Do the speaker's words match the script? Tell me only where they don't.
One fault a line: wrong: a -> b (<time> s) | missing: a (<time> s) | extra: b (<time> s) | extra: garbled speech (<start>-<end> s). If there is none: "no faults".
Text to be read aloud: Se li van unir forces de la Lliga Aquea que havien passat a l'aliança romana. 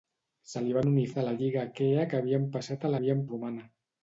missing: forces (1.0 s)
wrong: l'aliança -> havien (3.0 s)